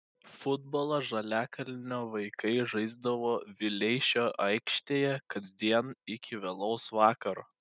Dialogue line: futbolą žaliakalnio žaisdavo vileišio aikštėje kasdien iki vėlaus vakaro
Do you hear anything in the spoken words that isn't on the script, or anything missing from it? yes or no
yes